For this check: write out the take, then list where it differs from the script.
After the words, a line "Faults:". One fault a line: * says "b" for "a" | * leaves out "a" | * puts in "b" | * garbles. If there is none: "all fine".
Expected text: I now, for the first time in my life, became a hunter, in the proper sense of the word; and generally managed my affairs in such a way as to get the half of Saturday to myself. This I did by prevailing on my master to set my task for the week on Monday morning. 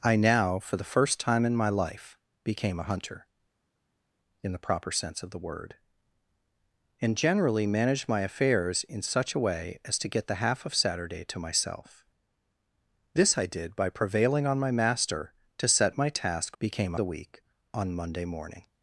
I now, for the first time in my life, became a hunter, in the proper sense of the word; and generally managed my affairs in such a way as to get the half of Saturday to myself. This I did by prevailing on my master to set my task became the week on Monday morning.
Faults:
* says "became" for "for"